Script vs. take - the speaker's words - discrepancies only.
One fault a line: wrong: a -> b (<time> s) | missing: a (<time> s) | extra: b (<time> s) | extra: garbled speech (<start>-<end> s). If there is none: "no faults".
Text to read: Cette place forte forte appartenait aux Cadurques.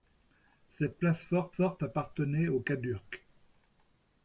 no faults